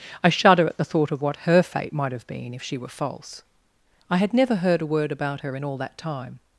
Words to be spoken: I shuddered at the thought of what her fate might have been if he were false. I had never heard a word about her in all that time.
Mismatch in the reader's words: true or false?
true